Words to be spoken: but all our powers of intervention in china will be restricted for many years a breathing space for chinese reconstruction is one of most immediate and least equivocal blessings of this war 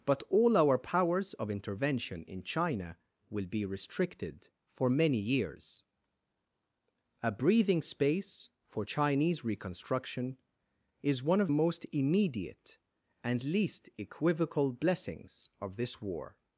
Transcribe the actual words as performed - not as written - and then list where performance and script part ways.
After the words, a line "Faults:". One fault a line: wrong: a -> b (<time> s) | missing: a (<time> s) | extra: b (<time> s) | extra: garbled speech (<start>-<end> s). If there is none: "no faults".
but all our powers of intervention in china will be restricted for many years a breathing space for chinese reconstruction is one of most immediate and least equivocal blessings of this war
Faults:
no faults